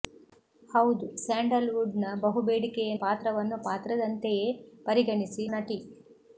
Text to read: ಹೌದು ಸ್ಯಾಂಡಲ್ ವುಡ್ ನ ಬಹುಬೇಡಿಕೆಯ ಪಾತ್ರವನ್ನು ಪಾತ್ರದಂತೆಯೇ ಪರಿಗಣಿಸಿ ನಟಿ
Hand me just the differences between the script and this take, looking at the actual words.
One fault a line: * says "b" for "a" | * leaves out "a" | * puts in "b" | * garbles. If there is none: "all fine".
all fine